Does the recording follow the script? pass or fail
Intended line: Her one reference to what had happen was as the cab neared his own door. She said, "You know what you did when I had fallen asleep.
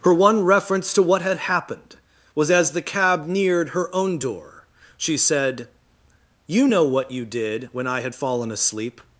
fail